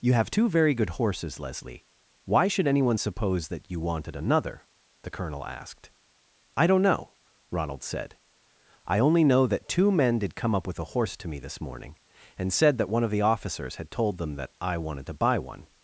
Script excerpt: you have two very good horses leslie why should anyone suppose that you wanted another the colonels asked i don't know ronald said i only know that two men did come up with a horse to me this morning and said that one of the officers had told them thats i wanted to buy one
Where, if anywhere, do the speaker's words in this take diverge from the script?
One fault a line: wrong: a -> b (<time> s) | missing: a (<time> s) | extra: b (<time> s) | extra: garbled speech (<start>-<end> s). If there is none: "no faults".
wrong: colonels -> colonel (5.1 s)
wrong: thats -> that (14.4 s)